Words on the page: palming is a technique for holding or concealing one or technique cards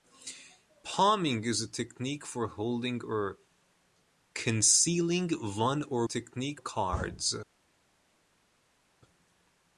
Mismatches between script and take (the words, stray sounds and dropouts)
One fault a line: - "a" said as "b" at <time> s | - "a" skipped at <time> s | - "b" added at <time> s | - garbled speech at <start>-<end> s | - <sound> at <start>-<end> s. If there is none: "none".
none